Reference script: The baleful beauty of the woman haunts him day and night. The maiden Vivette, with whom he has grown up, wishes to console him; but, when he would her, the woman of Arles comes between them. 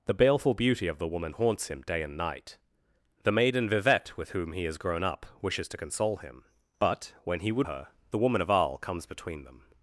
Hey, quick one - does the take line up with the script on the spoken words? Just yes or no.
yes